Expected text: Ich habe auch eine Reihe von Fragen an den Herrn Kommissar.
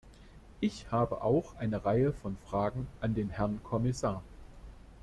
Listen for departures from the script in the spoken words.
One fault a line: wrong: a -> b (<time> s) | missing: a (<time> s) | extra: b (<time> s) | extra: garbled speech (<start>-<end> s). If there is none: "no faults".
no faults